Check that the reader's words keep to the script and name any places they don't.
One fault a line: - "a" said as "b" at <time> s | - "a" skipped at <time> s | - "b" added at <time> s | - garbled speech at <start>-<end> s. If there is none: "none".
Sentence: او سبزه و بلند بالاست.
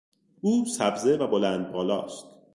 none